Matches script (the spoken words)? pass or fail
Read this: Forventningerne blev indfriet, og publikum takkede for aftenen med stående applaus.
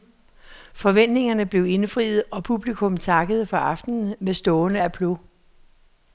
pass